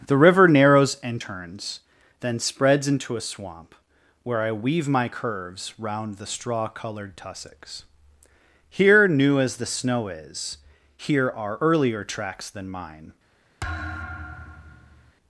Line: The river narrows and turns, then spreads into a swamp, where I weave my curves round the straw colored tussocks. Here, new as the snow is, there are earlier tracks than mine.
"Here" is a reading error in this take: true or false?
false